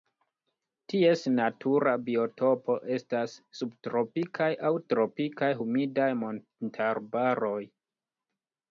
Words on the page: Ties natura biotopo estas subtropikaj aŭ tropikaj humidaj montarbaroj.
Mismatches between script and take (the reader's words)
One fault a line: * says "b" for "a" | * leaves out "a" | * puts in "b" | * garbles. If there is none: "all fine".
all fine